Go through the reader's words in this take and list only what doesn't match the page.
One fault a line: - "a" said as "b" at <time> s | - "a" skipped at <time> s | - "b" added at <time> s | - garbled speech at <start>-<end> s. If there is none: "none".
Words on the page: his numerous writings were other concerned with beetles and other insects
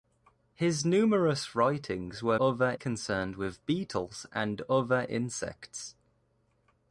none